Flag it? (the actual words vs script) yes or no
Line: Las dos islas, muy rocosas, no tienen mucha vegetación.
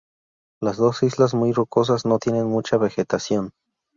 no